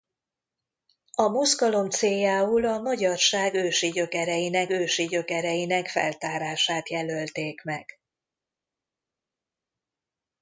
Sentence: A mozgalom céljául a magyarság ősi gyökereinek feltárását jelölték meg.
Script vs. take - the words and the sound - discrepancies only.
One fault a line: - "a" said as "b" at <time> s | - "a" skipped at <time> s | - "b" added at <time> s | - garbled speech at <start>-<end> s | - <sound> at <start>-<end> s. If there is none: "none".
- "ősi gyökereinek" added at 4.7 s